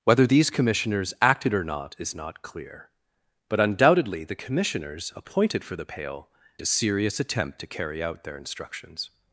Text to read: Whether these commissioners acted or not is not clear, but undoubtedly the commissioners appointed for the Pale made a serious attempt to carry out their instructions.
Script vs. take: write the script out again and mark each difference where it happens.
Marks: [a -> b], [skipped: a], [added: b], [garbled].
Whether these commissioners acted or not is not clear, but undoubtedly the commissioners appointed for the Pale [skipped: made] a serious attempt to carry out their instructions.